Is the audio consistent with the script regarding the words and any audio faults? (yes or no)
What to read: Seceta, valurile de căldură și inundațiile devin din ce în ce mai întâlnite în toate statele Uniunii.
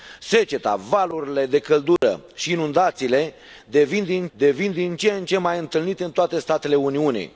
no